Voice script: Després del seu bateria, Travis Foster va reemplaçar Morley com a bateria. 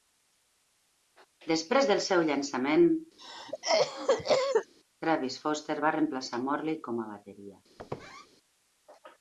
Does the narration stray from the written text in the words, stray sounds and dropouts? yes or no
yes